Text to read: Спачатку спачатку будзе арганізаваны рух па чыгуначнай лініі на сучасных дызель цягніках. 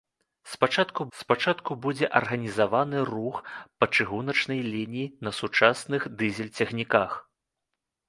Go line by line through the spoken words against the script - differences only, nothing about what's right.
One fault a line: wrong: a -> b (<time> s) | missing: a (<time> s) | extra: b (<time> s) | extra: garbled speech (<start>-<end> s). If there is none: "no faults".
no faults